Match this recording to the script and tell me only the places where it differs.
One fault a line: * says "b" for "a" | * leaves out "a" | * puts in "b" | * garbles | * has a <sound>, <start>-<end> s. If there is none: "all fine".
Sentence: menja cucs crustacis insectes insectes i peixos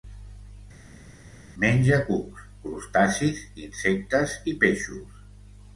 * leaves out "insectes"